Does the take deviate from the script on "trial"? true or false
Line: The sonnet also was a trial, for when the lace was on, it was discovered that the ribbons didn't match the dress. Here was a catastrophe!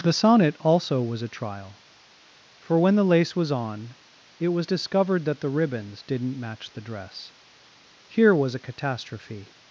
false